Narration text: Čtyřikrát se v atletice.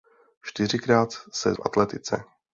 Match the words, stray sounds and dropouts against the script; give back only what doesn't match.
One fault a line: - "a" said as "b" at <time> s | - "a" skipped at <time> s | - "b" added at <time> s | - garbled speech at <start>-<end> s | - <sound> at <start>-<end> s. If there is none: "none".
none